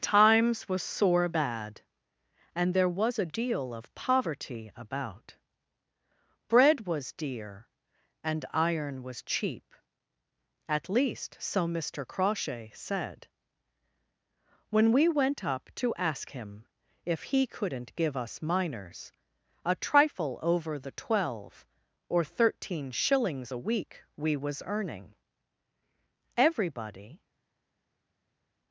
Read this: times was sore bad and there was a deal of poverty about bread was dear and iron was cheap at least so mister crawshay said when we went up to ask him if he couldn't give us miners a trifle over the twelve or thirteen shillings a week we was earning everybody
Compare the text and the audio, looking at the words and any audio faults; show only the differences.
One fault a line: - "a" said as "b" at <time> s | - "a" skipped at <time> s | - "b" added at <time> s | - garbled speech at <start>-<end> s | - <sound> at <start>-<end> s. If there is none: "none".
none